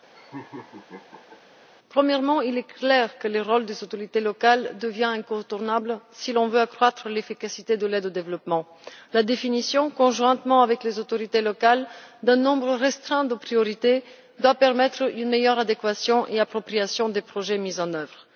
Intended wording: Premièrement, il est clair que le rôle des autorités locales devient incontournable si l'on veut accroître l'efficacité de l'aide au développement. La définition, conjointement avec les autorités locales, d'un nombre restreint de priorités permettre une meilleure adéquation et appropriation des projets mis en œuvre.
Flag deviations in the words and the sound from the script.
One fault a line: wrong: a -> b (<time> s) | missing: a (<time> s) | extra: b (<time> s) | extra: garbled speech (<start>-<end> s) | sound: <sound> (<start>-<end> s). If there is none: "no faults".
sound: laugh (0.1-1.4 s)
extra: doit (14.4 s)